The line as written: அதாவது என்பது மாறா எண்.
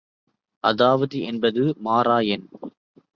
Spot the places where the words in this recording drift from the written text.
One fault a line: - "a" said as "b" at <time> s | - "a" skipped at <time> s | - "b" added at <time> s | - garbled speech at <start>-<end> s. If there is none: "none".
none